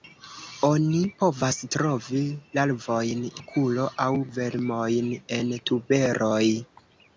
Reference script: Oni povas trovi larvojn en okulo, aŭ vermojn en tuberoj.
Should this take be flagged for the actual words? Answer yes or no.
yes